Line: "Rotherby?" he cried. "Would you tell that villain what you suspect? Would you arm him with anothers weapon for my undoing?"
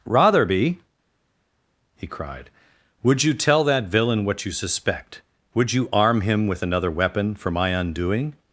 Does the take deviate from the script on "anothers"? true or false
true